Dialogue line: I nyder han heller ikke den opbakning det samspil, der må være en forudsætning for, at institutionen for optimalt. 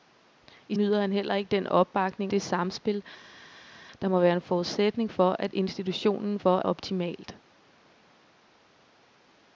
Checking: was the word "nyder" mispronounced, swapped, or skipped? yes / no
no